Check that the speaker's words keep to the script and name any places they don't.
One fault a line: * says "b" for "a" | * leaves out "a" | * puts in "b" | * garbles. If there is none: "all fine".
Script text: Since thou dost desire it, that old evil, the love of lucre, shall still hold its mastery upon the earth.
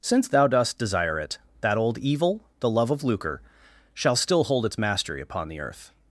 all fine